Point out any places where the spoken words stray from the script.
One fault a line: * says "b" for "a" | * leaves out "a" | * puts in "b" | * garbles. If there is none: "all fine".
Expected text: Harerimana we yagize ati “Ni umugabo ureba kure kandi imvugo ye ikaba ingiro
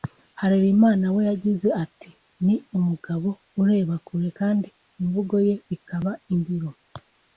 all fine